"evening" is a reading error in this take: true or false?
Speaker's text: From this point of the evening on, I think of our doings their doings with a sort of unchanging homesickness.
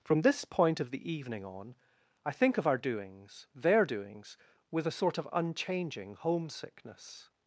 false